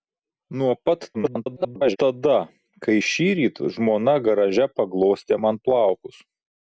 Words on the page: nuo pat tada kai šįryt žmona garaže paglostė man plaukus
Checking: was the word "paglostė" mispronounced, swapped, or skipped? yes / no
no